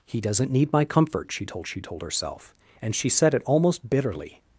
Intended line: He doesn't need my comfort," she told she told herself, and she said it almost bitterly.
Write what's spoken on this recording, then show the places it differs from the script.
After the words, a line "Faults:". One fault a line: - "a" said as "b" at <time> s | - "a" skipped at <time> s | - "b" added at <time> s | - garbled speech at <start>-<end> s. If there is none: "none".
He doesn't need my comfort," she told she told herself, and she said it almost bitterly.
Faults:
none